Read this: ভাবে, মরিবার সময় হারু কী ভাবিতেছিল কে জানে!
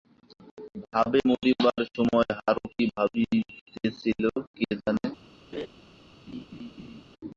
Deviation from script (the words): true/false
false